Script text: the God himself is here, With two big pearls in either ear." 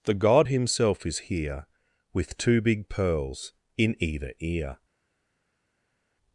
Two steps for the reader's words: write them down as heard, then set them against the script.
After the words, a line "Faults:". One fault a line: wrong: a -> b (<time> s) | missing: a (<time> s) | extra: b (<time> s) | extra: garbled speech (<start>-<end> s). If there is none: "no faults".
the God himself is here, With two big pearls in either ear."
Faults:
no faults